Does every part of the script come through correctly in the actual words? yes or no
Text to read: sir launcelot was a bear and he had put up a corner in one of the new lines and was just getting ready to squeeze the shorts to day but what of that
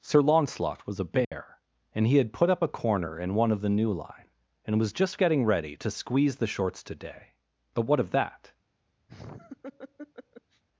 no